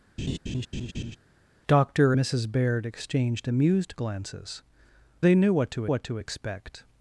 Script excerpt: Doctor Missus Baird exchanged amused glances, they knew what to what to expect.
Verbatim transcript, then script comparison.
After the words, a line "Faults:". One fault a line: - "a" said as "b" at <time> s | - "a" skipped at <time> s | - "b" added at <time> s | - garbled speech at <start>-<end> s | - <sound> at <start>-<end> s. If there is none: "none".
Doctor Missus Baird exchanged amused glances, they knew what to what to expect.
Faults:
- laugh at 0.2-1.2 s